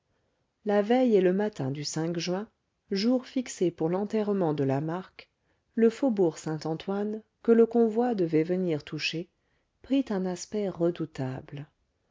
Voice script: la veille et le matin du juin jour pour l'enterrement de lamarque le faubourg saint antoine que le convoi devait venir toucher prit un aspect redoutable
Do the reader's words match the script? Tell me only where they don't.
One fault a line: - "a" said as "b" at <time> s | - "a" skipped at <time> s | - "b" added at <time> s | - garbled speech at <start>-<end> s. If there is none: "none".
- "fixé" added at 3.3 s